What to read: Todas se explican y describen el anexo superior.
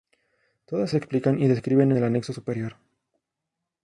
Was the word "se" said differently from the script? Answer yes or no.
no